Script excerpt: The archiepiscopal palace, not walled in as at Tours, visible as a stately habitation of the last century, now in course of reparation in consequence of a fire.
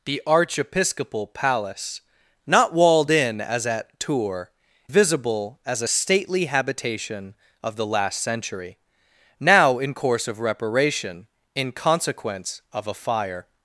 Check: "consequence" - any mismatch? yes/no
no